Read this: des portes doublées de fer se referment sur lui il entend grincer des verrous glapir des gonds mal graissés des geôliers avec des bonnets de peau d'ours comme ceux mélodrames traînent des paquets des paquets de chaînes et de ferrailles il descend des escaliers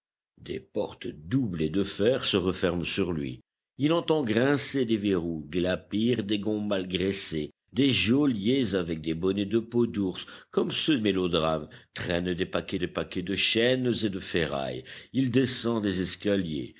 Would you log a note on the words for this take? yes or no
no